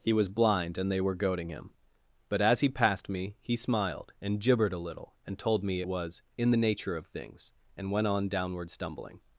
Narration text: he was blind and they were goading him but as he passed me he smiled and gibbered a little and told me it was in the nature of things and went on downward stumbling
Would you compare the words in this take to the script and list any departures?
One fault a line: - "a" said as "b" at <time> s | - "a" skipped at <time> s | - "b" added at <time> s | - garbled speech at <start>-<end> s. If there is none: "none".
- "it" skipped at 5.8 s